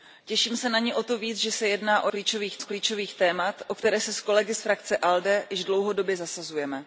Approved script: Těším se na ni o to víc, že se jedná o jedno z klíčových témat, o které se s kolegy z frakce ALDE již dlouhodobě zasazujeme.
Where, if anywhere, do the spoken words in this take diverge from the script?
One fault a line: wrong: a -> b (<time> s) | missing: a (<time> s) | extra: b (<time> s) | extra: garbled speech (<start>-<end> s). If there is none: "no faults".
wrong: jedno -> klíčových (2.1 s)